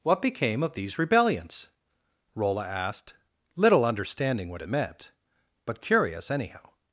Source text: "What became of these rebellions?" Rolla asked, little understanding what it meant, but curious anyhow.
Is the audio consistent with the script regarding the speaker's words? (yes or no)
yes